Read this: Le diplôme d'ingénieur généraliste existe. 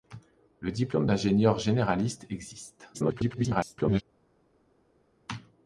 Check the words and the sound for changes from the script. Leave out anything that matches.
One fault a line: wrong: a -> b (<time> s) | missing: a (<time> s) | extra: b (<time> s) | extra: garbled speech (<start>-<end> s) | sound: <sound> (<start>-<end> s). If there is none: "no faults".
extra: garbled speech (2.9-4.0 s)